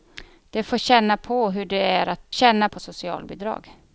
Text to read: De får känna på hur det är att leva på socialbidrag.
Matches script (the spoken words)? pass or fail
fail